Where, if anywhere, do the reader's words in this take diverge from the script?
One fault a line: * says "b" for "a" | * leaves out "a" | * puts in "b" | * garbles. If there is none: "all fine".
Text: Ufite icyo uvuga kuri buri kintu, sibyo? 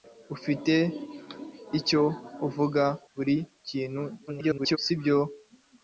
* leaves out "kuri"
* garbles